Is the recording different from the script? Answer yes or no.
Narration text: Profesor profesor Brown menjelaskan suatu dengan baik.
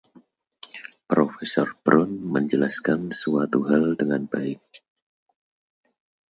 yes